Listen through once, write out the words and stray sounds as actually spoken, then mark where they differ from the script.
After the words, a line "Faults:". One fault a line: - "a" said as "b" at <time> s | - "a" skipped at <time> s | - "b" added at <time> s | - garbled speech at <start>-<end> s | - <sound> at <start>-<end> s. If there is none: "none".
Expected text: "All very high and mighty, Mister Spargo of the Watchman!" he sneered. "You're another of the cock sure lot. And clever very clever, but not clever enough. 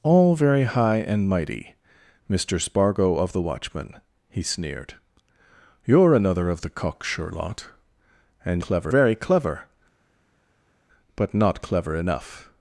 "All very high and mighty, Mister Spargo of the Watchman!" he sneered. "You're another of the cock sure lot. And clever very clever, but not clever enough.
Faults:
none